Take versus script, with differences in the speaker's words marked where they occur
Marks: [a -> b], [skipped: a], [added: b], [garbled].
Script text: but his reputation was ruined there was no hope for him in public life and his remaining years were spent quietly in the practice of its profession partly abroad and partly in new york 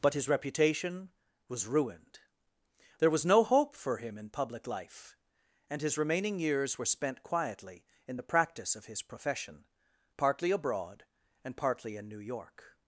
but his reputation was ruined there was no hope for him in public life and his remaining years were spent quietly in the practice of [its -> his] profession partly abroad and partly in new york